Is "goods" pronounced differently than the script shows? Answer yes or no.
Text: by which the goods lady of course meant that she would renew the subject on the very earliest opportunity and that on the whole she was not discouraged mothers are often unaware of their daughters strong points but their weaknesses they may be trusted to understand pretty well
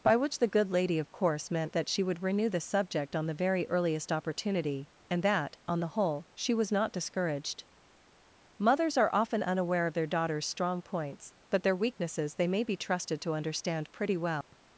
yes